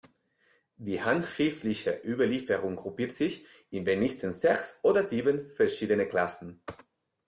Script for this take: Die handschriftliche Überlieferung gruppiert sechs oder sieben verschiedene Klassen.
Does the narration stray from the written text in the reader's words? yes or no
yes